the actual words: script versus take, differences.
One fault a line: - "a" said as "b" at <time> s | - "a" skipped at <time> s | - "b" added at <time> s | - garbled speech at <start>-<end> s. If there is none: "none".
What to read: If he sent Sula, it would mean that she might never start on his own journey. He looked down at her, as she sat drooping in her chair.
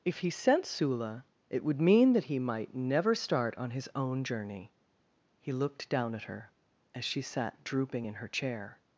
- "she" said as "he" at 2.2 s